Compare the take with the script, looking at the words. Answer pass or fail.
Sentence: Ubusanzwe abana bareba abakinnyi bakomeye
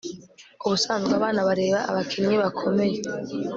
pass